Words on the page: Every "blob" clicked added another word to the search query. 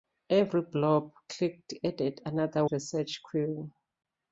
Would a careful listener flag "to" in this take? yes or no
yes